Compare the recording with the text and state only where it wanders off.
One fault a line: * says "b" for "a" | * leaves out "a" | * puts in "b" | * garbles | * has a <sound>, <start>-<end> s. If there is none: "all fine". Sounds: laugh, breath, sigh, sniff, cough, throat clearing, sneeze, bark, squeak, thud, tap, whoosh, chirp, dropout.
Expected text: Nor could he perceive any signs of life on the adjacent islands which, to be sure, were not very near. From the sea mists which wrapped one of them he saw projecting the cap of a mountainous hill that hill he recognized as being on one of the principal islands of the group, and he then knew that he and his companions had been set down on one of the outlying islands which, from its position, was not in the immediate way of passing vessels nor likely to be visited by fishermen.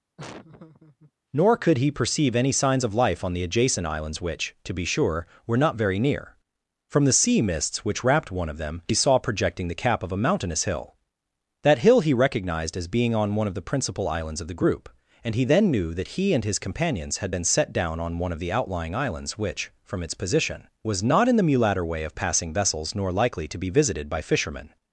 * has a laugh, 0.2-1.1 s
* says "mulatter" for "immediate"